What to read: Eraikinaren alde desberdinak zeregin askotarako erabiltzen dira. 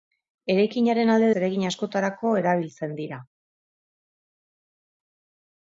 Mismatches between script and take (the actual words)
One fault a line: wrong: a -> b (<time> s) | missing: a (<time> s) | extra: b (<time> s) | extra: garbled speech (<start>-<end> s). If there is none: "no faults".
missing: desberdinak (1.3 s)